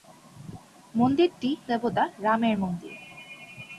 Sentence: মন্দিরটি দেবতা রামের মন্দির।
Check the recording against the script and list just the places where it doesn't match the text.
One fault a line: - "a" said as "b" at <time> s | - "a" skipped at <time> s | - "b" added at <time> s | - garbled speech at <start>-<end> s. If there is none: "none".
none